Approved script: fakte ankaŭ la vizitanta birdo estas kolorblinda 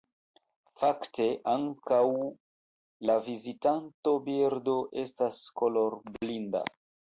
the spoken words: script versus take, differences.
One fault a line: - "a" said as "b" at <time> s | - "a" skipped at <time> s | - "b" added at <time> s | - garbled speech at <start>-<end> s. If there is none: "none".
none